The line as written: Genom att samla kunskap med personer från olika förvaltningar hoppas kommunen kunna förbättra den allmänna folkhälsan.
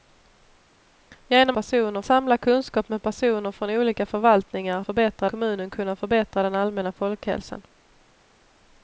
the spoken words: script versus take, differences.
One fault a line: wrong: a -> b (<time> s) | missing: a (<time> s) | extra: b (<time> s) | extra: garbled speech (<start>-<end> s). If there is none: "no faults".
wrong: att -> personer (1.5 s)
wrong: hoppas -> förbättra (4.8 s)